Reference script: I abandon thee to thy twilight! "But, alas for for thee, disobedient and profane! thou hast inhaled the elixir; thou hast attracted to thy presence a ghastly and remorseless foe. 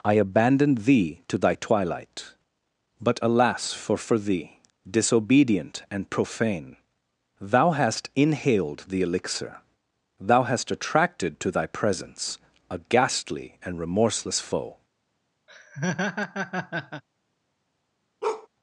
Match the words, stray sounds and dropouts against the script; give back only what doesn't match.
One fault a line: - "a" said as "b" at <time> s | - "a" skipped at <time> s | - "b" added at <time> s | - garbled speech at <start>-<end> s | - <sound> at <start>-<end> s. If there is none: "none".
- laugh at 15.5-17.0 s
- bark at 18.2-18.5 s